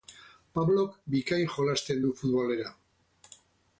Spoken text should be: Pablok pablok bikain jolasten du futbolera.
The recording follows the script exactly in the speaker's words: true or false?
false